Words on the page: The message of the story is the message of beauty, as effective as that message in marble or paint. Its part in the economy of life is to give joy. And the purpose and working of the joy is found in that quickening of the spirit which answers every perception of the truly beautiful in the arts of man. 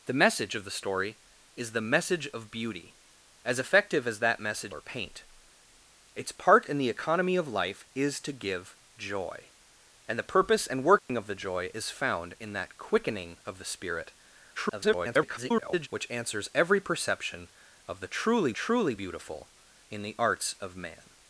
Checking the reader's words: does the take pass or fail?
fail